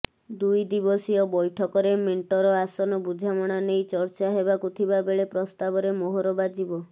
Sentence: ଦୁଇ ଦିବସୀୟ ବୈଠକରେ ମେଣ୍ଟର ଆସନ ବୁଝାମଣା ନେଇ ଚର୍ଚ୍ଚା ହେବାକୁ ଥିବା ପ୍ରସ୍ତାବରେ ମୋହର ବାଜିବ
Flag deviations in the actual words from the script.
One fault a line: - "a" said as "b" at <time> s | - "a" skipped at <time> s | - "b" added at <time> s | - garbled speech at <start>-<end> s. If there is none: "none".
- "ବେଳେ" added at 5.0 s